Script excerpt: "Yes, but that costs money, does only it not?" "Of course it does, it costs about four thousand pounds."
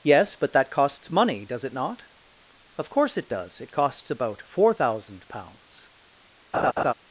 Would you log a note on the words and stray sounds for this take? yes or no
yes